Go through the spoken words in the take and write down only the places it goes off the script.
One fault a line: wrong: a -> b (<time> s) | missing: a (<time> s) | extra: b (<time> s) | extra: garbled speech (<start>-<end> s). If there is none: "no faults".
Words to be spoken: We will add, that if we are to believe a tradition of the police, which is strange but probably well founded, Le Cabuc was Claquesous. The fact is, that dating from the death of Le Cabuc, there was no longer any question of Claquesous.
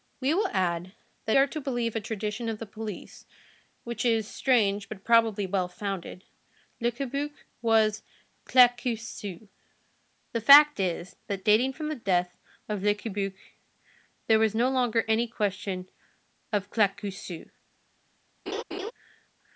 missing: if we (1.4 s)